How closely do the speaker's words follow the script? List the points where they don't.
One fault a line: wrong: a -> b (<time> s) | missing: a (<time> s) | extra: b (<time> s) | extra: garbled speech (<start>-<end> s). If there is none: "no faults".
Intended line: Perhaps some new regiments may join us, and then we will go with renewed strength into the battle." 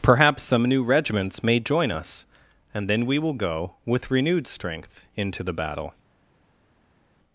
no faults